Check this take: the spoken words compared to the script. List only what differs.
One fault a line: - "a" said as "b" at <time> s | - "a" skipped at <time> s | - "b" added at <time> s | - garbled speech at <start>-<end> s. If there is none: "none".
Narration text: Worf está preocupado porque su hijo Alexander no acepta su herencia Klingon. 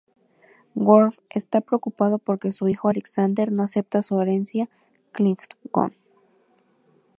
none